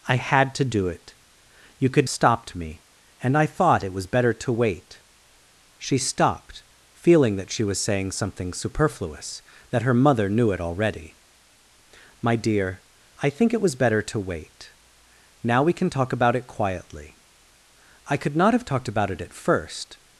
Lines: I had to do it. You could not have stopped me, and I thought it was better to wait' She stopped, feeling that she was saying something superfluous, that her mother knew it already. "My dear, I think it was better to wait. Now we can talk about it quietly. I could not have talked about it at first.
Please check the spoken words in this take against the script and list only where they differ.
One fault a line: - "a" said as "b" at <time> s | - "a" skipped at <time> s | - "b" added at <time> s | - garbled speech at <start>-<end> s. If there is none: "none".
- "not have" skipped at 2.1 s